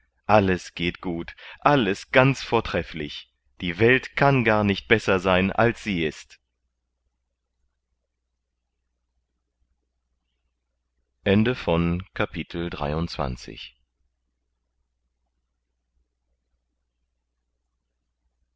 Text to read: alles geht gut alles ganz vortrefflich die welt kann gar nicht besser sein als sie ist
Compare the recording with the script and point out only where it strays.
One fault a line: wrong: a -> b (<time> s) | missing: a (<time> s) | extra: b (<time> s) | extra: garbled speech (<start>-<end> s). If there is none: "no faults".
no faults